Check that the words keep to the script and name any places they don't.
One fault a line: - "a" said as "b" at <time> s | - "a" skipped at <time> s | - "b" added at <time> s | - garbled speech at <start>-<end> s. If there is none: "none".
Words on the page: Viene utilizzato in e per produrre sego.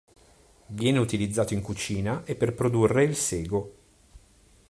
- "cucina" added at 1.6 s
- "il" added at 3.0 s